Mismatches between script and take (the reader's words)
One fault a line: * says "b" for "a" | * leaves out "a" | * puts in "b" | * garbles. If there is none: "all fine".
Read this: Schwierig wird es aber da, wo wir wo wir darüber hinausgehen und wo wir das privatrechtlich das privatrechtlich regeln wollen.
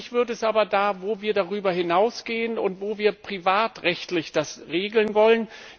* leaves out "wo wir"
* leaves out "das privatrechtlich"